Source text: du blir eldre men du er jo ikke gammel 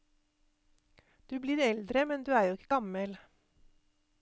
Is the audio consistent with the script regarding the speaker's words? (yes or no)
yes